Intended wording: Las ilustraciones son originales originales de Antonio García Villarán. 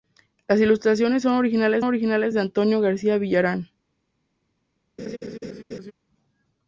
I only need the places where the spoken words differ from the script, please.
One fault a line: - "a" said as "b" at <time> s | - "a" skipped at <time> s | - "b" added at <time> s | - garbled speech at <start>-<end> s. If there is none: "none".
none